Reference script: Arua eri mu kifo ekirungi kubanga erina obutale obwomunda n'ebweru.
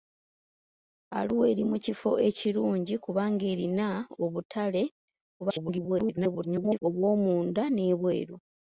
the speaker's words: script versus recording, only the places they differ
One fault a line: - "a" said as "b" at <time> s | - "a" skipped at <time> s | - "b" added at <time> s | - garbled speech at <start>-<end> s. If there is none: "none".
- garbled speech at 5.4-6.8 s